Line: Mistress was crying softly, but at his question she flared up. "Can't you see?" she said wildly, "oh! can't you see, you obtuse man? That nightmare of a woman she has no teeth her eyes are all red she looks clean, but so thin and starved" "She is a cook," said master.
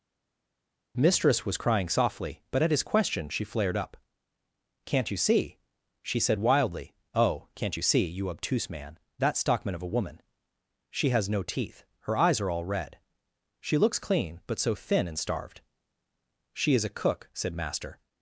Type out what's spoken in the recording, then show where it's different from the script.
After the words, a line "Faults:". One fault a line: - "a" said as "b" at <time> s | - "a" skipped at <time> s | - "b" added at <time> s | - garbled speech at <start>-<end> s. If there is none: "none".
Mistress was crying softly, but at his question she flared up. "Can't you see?" she said wildly, "oh! can't you see, you obtuse man? That stockman of a woman she has no teeth her eyes are all red she looks clean, but so thin and starved" "She is a cook," said master.
Faults:
- "nightmare" said as "stockman" at 9.4 s